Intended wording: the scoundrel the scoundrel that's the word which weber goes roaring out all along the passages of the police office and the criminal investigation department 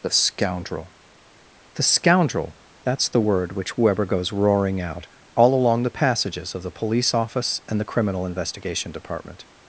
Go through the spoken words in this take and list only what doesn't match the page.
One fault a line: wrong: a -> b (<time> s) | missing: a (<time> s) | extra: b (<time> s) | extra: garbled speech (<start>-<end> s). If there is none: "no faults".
no faults